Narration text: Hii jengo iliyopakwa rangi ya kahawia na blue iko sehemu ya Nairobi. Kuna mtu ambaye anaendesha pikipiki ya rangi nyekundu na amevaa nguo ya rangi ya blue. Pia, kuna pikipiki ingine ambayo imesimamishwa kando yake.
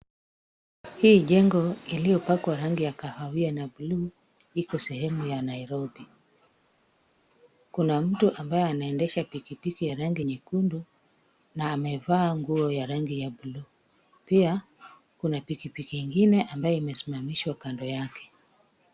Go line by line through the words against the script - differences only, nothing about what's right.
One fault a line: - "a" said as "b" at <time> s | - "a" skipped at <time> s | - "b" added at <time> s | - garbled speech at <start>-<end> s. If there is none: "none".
none